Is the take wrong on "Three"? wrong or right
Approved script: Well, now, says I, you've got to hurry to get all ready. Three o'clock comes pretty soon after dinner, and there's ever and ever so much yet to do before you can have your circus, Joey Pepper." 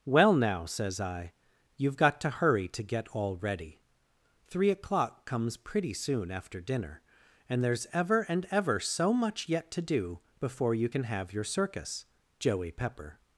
right